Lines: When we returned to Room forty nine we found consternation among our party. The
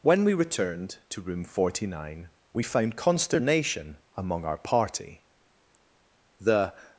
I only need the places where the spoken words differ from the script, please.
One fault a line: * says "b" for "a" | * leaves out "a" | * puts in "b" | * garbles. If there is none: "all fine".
all fine